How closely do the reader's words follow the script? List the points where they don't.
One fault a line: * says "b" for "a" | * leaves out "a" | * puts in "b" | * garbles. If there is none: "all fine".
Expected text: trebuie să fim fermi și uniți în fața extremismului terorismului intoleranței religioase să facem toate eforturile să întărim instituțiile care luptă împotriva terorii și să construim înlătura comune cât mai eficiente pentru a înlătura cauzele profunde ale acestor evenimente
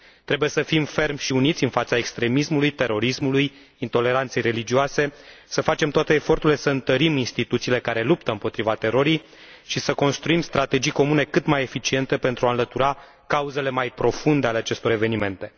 * says "strategii" for "înlătura"
* puts in "mai"